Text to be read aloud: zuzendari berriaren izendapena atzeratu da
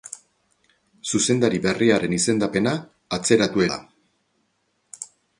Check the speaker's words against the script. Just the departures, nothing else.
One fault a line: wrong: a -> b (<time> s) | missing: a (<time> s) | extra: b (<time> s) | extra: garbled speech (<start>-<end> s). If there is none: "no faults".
no faults